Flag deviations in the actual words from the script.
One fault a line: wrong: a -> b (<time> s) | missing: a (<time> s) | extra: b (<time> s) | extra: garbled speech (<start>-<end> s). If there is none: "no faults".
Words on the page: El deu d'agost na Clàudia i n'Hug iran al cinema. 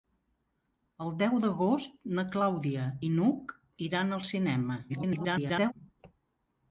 extra: garbled speech (4.9-5.7 s)